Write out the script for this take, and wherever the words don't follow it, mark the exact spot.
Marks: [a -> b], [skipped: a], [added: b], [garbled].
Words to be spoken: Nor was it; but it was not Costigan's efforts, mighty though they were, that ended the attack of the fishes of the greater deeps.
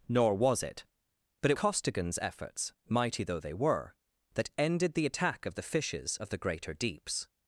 Nor was it; but it [skipped: was not] Costigan's efforts, mighty though they were, that ended the attack of the fishes of the greater deeps.